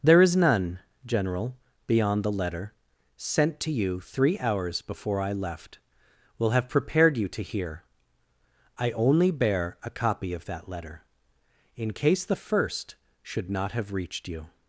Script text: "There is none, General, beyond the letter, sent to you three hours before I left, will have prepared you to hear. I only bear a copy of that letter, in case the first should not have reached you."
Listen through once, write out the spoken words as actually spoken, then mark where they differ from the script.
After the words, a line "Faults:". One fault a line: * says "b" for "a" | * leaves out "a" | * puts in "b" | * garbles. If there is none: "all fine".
"There is none, General, beyond the letter, sent to you three hours before I left, will have prepared you to hear. I only bear a copy of that letter, in case the first should not have reached you."
Faults:
all fine